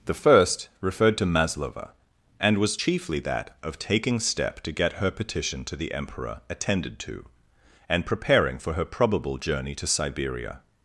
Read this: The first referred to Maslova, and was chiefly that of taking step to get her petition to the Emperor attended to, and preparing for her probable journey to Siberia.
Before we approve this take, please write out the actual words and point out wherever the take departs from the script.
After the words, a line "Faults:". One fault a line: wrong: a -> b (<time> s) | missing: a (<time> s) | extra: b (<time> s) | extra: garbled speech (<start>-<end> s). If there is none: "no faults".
The first referred to Maslova, and was chiefly that of taking step to get her petition to the Emperor attended to, and preparing for her probable journey to Siberia.
Faults:
no faults